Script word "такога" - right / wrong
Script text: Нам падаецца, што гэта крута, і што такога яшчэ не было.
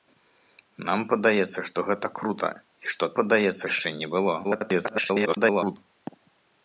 wrong